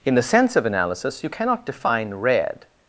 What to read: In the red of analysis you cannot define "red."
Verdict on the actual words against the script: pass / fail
fail